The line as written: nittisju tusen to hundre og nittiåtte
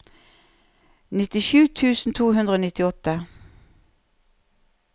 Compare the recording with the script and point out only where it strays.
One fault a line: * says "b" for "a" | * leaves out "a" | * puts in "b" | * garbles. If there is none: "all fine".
all fine